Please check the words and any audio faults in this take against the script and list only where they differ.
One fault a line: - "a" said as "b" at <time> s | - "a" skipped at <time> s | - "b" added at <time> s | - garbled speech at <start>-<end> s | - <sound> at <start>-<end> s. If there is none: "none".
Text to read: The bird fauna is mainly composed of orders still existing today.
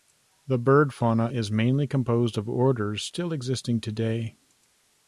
none